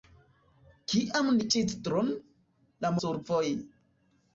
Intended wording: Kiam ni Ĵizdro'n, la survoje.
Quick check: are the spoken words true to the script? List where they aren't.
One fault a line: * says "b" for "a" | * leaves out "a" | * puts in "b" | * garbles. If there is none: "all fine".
all fine